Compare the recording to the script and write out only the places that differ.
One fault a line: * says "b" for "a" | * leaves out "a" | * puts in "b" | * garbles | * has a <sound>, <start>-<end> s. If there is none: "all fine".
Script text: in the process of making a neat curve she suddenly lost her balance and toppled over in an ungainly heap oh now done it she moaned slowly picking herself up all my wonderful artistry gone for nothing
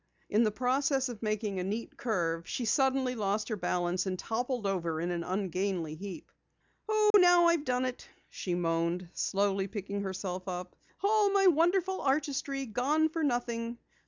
* has a dropout, 7.1-7.1 s
* puts in "i've"